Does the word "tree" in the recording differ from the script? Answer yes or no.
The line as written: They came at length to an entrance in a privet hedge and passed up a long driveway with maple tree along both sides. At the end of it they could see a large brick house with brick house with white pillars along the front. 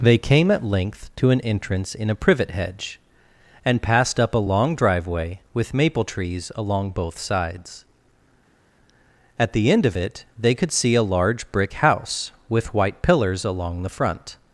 yes